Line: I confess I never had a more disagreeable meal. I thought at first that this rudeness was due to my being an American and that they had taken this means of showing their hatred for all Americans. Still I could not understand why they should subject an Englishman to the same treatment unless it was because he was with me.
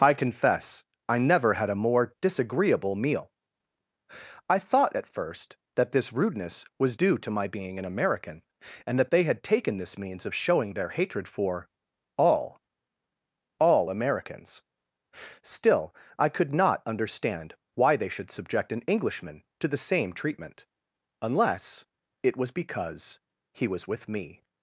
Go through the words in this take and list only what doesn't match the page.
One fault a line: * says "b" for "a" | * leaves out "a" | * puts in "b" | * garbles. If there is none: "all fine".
* puts in "all"